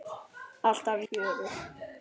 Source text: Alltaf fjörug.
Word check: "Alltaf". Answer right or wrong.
right